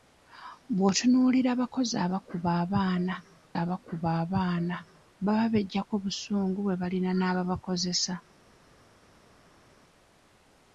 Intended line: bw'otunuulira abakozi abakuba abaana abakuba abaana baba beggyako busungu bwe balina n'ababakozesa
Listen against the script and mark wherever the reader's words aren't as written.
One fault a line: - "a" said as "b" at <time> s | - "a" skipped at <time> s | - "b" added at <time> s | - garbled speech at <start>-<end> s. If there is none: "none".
none